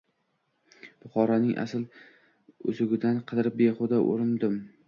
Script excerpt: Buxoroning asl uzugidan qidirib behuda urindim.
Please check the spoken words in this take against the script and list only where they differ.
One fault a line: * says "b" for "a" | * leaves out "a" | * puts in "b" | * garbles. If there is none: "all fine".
all fine